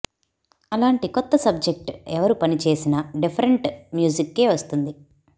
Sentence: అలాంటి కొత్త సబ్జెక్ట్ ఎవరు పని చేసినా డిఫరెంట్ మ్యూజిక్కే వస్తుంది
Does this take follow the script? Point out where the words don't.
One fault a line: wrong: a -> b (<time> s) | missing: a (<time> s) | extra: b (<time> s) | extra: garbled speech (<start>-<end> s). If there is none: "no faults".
no faults